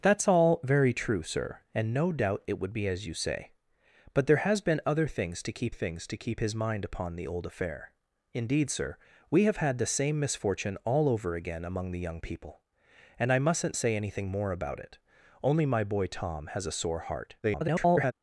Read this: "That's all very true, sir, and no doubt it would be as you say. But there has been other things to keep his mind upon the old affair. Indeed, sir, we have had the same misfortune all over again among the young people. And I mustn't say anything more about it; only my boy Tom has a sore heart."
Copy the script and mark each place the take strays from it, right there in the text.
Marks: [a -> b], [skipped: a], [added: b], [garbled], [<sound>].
"That's all very true, sir, and no doubt it would be as you say. But there has been other things to keep [added: things to keep] his mind upon the old affair. Indeed, sir, we have had the same misfortune all over again among the young people. And I mustn't say anything more about it; only my boy Tom has a sore heart." [garbled]